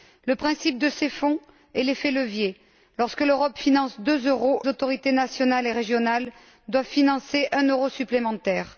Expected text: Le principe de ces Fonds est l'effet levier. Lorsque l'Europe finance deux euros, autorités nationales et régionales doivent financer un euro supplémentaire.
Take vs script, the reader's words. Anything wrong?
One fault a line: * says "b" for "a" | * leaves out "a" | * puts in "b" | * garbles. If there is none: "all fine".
all fine